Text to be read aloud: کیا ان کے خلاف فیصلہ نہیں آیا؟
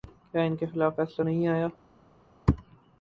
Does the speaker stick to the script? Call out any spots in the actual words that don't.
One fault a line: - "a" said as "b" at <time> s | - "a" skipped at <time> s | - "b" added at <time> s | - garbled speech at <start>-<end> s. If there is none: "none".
none